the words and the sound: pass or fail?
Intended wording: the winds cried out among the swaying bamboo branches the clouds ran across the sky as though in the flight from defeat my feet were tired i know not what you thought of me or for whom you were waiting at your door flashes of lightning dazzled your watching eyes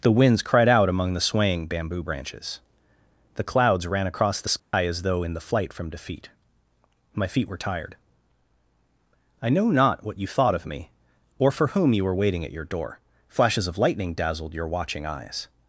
fail